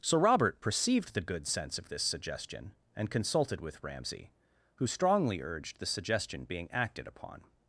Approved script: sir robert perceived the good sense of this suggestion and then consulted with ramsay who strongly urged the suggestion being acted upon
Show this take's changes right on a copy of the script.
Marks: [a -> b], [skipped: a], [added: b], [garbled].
sir robert perceived the good sense of this suggestion and [skipped: then] consulted with ramsay who strongly urged the suggestion being acted upon